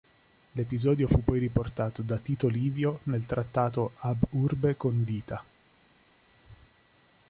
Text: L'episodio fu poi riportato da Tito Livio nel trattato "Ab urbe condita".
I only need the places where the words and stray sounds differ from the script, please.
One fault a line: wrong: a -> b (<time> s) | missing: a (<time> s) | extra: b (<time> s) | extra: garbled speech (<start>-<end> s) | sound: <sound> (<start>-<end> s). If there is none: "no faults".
no faults